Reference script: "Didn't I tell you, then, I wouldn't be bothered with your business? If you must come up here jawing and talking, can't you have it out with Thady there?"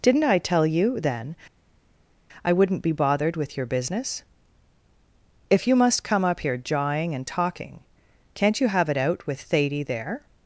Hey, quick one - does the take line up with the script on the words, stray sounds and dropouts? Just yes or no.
yes